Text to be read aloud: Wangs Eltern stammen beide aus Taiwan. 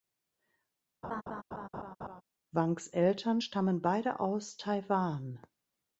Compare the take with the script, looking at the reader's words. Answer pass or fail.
pass